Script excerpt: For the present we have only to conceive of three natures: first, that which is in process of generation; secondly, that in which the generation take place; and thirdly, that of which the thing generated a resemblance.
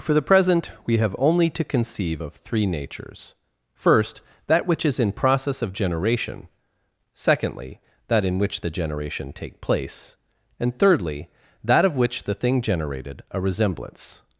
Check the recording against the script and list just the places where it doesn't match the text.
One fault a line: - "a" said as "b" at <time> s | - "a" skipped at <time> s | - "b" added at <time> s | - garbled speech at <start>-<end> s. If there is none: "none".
none